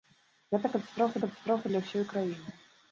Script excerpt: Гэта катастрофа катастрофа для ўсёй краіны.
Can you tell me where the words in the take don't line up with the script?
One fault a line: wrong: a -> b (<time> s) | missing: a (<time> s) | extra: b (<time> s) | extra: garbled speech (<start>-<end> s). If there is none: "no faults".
no faults